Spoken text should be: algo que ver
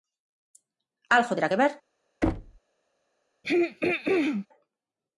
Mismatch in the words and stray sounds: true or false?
true